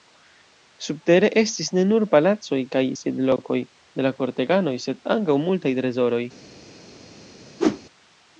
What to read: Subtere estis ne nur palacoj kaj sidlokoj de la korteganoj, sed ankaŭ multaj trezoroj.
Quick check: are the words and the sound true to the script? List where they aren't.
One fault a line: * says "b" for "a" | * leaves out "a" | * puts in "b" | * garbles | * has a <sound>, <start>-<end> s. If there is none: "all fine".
* has a whoosh, 7.6-7.8 s